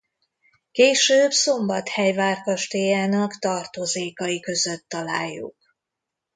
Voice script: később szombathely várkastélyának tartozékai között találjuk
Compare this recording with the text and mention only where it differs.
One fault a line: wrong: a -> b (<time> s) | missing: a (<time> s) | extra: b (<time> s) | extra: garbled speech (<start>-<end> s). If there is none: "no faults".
no faults